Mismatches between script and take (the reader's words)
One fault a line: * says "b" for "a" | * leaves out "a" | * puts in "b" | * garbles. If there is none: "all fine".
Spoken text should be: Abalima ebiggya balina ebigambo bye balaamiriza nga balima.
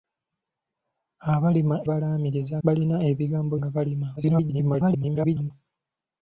* says "balaamiriza" for "ebiggya"
* leaves out "bye balaamiriza"
* garbles